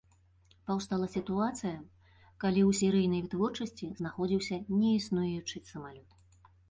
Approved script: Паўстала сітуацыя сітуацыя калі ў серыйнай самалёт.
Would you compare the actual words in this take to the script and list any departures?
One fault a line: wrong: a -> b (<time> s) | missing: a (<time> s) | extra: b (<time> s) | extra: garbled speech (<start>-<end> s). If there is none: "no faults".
missing: сітуацыя (1.7 s)
extra: вытворчасці знаходзіўся неіснуючы (3.2 s)